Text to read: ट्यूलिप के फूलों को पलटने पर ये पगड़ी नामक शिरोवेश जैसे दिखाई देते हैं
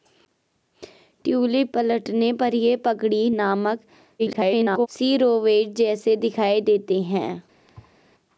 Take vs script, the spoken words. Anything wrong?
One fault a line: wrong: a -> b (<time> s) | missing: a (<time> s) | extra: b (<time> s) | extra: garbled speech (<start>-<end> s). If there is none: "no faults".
missing: के फूलों को (1.7 s)
extra: garbled speech (4.2-4.9 s)